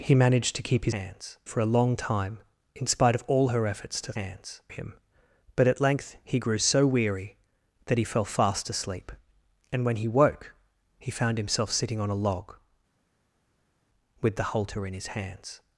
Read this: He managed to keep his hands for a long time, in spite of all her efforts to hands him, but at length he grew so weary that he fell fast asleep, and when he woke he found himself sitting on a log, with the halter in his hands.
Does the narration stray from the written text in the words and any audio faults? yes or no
no